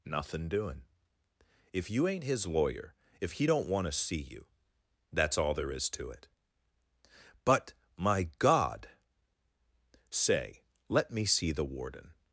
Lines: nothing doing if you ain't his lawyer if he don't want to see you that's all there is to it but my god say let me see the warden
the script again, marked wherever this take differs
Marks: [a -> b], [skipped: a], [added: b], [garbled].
nothing doing if you ain't his lawyer if he don't want to see you that's all there is to it but my god say let me see the warden